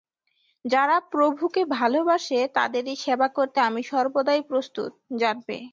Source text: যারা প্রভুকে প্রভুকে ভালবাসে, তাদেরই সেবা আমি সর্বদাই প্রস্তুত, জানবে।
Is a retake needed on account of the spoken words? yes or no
yes